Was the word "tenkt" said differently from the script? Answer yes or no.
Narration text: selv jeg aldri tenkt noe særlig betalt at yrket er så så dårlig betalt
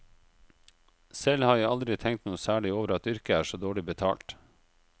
no